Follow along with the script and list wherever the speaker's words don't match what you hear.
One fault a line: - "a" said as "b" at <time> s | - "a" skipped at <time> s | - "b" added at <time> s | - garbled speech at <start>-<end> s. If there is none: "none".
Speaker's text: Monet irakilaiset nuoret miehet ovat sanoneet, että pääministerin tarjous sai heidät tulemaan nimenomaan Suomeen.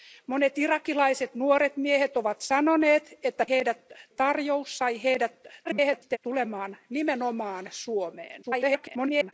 - "pääministerin" said as "heidät" at 3.5 s
- garbled speech at 5.6-6.2 s
- garbled speech at 8.4-9.3 s